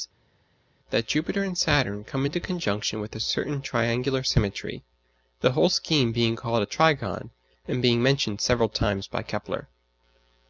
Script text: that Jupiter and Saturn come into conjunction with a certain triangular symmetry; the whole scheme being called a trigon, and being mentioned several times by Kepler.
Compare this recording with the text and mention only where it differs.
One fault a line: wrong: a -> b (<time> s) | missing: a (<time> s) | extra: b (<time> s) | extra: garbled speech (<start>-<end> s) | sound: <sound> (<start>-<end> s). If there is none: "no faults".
no faults